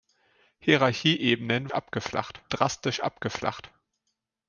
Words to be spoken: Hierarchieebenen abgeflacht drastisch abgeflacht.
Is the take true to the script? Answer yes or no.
yes